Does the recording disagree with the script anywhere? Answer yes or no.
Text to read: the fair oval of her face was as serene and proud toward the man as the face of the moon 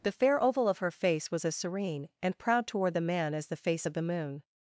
no